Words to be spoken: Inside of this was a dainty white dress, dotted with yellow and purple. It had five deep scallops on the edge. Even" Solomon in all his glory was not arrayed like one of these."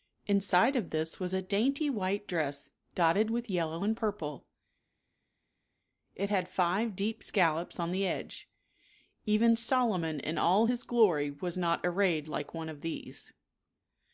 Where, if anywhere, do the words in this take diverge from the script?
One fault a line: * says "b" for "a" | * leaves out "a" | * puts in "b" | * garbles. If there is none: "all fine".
all fine